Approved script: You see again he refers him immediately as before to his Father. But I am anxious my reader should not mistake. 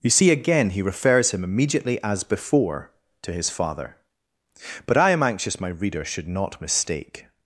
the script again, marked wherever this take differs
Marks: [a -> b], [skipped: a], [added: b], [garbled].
You see again he refers him immediately as before to his Father. But I am anxious my reader should not mistake.